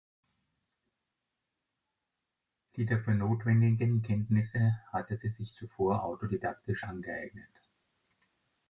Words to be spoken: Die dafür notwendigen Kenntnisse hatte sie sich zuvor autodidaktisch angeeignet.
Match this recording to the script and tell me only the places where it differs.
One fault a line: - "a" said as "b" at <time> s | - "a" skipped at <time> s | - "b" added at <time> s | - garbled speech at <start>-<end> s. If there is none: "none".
none